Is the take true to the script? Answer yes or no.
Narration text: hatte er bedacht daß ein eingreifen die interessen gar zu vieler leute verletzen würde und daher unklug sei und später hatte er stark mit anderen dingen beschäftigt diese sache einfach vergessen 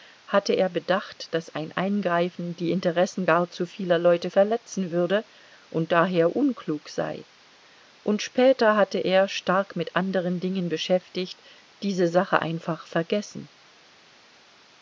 yes